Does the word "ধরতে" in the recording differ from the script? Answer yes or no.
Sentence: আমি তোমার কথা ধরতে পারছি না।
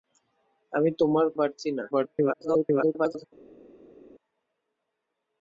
yes